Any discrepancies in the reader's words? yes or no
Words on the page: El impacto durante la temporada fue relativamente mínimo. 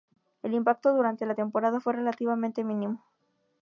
no